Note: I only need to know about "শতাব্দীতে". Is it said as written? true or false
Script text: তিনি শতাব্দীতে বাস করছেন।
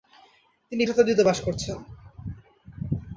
true